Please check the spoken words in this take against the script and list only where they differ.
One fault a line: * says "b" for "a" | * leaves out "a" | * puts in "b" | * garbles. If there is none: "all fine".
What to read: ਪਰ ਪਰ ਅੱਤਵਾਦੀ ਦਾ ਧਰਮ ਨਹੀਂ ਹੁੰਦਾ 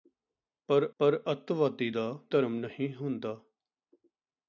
all fine